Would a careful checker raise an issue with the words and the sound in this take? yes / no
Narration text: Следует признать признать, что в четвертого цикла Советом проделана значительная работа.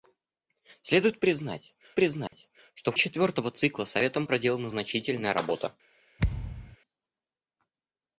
yes